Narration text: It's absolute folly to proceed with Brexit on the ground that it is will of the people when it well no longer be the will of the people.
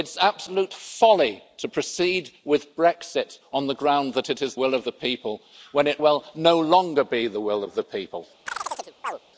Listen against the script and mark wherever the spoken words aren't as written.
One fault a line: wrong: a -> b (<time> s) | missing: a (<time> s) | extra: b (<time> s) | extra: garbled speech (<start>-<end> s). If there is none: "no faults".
no faults